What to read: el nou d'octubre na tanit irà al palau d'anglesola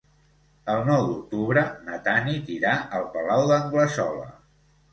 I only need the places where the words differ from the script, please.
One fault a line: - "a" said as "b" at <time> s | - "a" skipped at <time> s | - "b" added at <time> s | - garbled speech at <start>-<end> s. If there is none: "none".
none